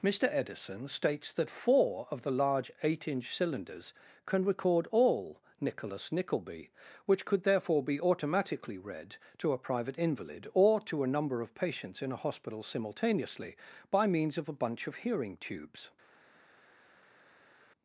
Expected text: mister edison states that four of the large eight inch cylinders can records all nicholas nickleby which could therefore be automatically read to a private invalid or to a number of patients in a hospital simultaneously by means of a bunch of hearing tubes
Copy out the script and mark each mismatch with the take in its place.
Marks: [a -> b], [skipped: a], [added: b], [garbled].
mister edison states that four of the large eight inch cylinders can [records -> record] all nicholas nickleby which could therefore be automatically read to a private invalid or to a number of patients in a hospital simultaneously by means of a bunch of hearing tubes